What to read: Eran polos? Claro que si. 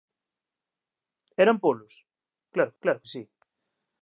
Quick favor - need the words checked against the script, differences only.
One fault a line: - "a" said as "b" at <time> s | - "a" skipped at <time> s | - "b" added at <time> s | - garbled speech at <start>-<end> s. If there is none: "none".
- "claro" added at 2.8 s